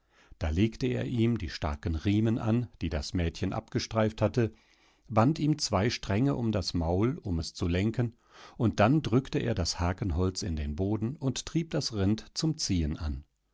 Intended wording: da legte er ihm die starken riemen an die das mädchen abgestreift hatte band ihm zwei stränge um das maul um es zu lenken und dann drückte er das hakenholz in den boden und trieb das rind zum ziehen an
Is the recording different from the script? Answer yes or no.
no